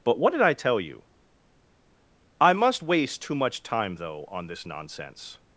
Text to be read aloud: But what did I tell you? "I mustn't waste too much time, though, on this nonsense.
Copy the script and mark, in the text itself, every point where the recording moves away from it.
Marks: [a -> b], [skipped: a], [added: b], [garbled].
But what did I tell you? "I [mustn't -> must] waste too much time, though, on this nonsense.